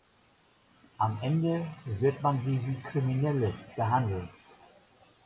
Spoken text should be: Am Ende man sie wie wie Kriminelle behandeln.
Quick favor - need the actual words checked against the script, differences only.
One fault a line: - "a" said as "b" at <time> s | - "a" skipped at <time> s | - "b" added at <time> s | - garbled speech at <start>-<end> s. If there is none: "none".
- "wird" added at 1.8 s
- "wie" skipped at 2.9 s